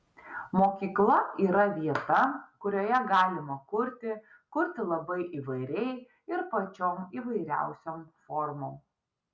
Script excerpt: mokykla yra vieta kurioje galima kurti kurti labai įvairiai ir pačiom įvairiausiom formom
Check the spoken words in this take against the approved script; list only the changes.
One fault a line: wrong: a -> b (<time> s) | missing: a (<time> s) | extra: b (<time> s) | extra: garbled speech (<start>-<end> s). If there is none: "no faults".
no faults